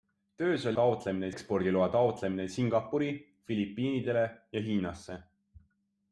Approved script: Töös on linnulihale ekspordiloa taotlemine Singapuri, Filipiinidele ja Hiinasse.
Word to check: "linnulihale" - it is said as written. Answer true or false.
false